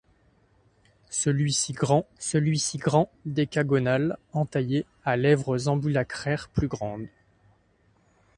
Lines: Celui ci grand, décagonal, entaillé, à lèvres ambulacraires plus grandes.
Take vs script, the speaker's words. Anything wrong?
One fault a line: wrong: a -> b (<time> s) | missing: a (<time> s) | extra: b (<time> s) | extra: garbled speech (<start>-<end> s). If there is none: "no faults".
extra: celui ci grand (2.2 s)